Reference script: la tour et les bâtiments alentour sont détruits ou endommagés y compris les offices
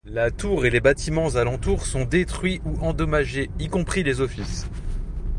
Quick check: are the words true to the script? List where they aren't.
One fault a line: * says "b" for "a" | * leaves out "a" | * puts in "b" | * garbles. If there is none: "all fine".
all fine